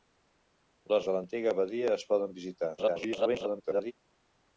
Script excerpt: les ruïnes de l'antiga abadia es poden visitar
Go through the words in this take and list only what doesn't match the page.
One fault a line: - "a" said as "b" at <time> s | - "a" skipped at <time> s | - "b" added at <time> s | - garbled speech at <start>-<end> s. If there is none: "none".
- "ruïnes" skipped at 1.1 s
- garbled speech at 2.8-3.9 s